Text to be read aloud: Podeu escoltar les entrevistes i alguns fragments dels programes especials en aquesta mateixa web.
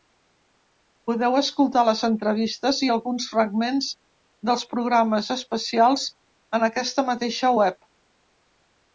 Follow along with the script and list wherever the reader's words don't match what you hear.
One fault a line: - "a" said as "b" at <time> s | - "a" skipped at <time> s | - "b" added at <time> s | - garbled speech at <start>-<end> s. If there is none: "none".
none